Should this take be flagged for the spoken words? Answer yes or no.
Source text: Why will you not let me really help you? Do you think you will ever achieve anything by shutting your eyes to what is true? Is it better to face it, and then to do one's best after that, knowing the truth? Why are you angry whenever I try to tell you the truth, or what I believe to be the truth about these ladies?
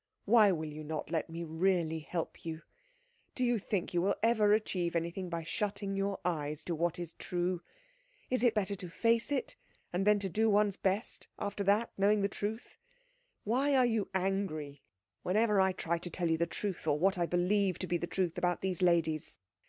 no